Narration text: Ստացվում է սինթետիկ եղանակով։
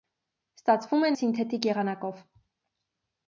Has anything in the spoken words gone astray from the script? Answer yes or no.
no